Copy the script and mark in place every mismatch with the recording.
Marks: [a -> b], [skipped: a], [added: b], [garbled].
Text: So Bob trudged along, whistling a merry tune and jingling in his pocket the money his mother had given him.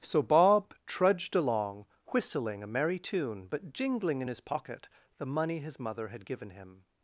So Bob trudged along, whistling a merry tune [and -> but] jingling in his pocket the money his mother had given him.